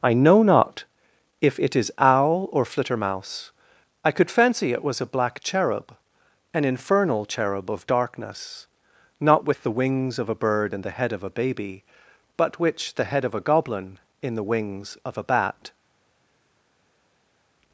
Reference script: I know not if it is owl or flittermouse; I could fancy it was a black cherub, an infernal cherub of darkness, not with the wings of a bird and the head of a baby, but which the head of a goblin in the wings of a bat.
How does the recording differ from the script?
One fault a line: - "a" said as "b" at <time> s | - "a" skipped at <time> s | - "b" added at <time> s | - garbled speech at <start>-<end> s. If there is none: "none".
none